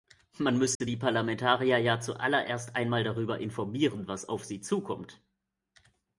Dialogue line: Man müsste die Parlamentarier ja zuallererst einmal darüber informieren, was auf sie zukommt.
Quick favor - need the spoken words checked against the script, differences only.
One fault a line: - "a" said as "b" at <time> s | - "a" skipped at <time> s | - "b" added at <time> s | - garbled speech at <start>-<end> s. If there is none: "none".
none